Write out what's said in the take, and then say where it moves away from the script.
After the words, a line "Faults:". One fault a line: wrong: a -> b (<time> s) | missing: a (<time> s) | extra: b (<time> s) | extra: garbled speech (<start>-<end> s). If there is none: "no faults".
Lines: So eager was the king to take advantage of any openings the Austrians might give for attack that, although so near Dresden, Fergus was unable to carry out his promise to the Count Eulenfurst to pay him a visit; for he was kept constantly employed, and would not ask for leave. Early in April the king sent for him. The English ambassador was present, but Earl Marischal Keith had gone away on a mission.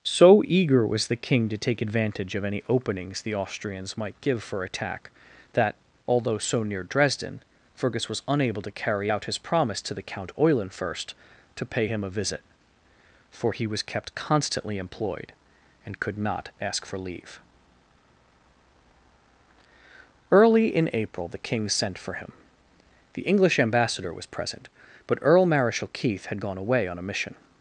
So eager was the king to take advantage of any openings the Austrians might give for attack that, although so near Dresden, Fergus was unable to carry out his promise to the Count Eulenfurst to pay him a visit; for he was kept constantly employed, and could not ask for leave. Early in April the king sent for him. The English ambassador was present, but Earl Marischal Keith had gone away on a mission.
Faults:
wrong: would -> could (16.0 s)